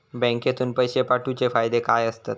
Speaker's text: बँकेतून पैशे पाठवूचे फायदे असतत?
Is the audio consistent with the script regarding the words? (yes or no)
no